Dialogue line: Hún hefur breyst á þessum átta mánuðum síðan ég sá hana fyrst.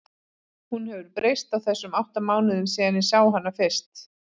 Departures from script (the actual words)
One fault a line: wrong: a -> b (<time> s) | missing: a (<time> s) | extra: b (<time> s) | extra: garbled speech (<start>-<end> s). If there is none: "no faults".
no faults